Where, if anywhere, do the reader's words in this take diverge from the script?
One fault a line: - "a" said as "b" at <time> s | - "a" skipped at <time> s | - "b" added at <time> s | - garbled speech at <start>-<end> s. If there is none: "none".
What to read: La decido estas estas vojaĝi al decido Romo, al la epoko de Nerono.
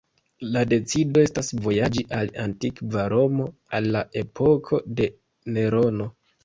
- "estas" skipped at 1.5 s
- "decido" said as "antikva" at 2.4 s